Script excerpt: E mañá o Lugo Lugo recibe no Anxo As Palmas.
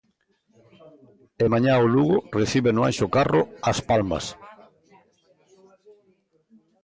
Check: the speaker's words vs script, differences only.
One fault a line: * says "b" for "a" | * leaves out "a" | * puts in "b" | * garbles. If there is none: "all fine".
* leaves out "Lugo"
* puts in "Carro"